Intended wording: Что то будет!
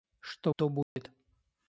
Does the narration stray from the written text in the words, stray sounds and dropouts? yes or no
yes